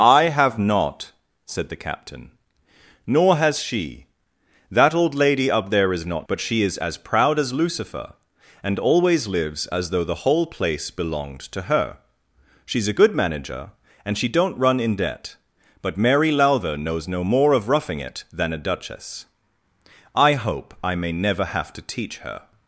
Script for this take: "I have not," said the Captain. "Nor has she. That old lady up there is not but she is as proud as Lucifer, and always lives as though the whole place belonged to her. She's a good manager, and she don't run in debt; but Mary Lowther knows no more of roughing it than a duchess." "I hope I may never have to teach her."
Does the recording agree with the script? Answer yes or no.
yes